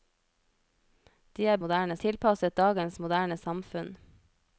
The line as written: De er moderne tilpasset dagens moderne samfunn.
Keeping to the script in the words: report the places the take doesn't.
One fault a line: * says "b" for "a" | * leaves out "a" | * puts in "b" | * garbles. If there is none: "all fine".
all fine